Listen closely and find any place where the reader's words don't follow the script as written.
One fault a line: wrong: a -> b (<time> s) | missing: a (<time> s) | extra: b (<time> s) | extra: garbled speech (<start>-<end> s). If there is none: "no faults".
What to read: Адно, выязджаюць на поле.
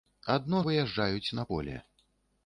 no faults